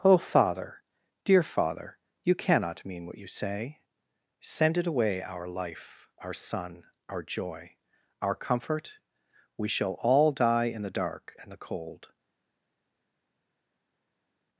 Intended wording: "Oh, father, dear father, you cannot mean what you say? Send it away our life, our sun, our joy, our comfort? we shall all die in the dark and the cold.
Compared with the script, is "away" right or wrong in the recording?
right